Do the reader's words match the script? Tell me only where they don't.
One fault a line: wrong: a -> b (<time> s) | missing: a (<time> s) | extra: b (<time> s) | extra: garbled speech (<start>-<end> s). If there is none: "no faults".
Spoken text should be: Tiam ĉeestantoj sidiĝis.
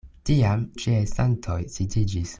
no faults